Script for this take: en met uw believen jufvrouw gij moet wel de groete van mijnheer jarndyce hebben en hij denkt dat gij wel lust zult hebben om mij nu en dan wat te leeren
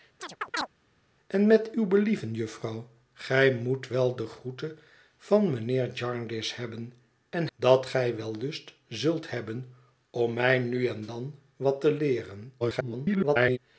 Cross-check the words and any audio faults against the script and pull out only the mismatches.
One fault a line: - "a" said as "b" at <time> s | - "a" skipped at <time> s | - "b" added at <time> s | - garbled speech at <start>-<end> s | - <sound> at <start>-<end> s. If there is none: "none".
- chirp at 0.2-0.7 s
- "hij denkt" skipped at 7.5 s
- garbled speech at 12.6-13.6 s